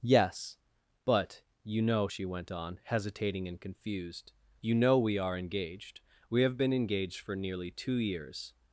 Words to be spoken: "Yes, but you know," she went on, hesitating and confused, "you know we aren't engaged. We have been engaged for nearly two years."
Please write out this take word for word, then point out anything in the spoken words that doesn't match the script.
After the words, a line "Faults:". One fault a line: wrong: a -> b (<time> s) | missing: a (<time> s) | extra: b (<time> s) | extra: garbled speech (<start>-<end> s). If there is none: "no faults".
"Yes, but you know," she went on, hesitating and confused, "you know we are engaged. We have been engaged for nearly two years."
Faults:
wrong: aren't -> are (5.2 s)